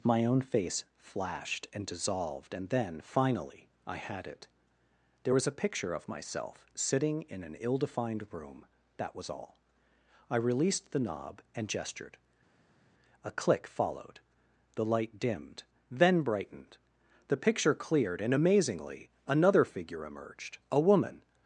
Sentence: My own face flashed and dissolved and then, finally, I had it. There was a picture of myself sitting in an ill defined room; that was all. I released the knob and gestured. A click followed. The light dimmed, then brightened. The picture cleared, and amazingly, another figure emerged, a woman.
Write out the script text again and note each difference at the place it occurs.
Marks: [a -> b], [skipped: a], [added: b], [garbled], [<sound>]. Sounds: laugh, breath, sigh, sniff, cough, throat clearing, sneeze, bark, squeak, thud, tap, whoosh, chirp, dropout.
My own face flashed and dissolved and then, finally, I had it. There was a picture of myself sitting in an ill defined room; that was all. I released the knob and gestured. A click followed. The light dimmed, then brightened. The picture cleared, and amazingly, another figure emerged, a woman.